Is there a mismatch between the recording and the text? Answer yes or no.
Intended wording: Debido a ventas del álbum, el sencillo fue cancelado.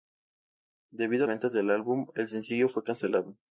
no